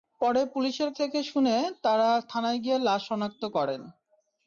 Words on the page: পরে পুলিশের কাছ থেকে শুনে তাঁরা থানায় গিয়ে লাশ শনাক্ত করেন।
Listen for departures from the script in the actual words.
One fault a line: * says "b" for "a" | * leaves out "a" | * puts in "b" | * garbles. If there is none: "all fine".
* leaves out "কাছ"